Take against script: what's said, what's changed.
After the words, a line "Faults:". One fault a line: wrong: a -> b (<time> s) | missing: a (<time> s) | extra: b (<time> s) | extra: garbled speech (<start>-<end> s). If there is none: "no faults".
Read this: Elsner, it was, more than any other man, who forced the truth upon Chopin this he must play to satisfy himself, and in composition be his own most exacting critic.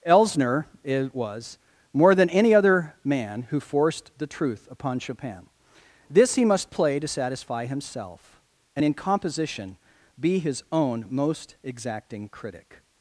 Elsner, it was, more than any other man, who forced the truth upon Chopin this he must play to satisfy himself, and in composition be his own most exacting critic.
Faults:
no faults